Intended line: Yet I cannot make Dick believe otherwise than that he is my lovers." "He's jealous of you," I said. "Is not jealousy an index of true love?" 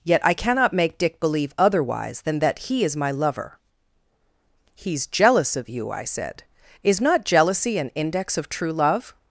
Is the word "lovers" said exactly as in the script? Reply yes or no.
no